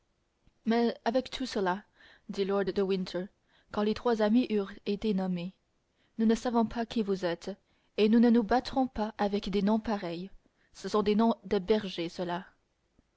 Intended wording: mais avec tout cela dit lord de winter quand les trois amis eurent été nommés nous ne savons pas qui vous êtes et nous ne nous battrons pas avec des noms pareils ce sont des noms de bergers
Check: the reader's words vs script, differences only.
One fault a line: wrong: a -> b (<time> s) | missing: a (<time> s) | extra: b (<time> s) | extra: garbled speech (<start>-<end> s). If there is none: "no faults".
no faults